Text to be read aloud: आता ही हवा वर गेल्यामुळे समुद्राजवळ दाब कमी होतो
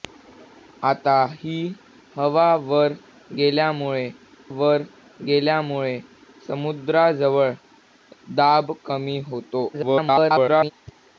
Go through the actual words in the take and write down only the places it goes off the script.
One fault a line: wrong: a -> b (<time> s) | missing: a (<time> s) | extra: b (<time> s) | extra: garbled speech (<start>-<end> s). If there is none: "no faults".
extra: वर गेल्यामुळे (4.5 s)
extra: garbled speech (9.7-10.7 s)